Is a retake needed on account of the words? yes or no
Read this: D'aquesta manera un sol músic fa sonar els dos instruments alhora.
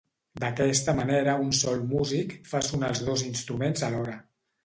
no